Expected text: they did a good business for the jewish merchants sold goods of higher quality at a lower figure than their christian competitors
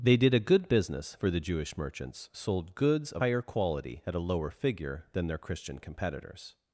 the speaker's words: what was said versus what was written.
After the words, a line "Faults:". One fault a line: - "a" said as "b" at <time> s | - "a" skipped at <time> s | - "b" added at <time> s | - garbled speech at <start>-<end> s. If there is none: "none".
they did a good business for the jewish merchants sold goods of higher quality at a lower figure than their christian competitors
Faults:
none